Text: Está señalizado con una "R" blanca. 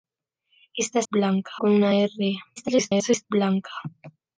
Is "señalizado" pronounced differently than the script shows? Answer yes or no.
yes